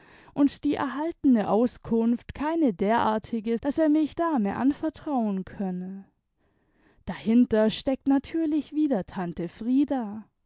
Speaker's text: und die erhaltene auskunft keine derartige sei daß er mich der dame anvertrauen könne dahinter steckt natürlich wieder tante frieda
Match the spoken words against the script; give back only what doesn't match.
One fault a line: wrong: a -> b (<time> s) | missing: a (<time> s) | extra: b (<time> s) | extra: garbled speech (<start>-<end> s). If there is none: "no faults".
missing: sei (3.6 s)
missing: der (4.2 s)